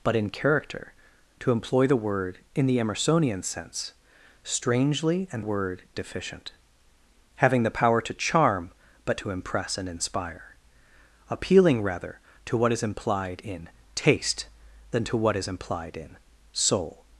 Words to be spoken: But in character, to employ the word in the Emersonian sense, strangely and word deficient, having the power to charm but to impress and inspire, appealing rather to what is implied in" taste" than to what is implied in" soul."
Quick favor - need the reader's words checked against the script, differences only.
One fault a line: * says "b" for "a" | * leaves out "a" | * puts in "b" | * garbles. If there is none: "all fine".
all fine